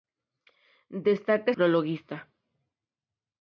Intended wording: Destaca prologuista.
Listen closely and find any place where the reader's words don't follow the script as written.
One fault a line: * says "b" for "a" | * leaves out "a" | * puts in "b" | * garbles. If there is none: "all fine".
all fine